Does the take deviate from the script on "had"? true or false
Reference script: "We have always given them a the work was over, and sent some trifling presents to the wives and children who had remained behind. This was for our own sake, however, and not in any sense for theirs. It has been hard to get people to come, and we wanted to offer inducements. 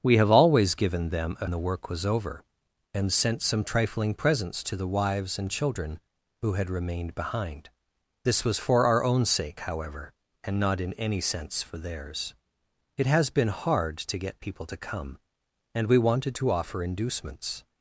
false